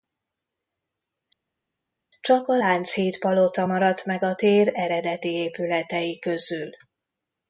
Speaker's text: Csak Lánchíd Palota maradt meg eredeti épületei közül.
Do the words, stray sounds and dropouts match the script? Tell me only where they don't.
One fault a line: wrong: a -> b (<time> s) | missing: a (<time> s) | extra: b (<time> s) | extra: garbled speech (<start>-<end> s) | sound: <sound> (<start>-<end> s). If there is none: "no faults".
extra: a (2.5 s)
extra: a tér (4.2 s)